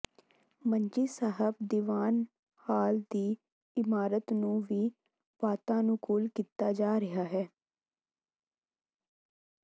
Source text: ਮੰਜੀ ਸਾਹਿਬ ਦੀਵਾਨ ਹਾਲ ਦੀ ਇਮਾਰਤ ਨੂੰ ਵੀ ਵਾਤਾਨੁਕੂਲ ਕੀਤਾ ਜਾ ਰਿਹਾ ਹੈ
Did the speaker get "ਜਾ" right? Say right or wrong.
right